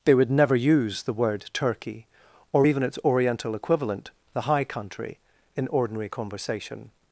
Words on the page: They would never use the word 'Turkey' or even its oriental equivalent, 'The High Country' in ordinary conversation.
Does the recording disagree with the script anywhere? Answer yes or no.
no